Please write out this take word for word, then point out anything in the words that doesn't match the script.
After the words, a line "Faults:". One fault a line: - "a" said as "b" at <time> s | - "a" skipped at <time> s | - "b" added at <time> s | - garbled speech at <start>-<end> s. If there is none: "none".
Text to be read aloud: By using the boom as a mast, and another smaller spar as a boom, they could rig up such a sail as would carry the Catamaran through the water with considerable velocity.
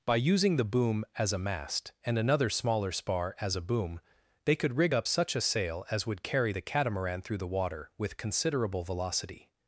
By using the boom as a mast, and another smaller spar as a boom, they could rig up such a sail as would carry the Catamaran through the water with considerable velocity.
Faults:
none